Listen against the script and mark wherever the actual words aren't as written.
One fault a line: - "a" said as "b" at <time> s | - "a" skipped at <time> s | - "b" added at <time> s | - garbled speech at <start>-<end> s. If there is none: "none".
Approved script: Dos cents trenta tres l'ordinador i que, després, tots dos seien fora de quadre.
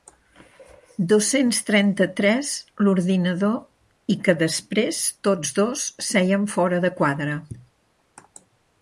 none